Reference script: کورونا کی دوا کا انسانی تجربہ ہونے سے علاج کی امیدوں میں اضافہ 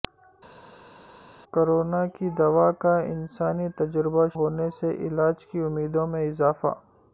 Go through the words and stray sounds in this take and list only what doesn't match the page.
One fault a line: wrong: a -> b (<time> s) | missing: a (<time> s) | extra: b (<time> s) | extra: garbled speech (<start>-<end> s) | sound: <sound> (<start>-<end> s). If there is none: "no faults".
no faults